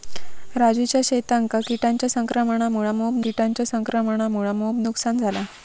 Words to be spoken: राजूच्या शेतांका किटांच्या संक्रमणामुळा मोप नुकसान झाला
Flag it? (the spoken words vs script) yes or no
yes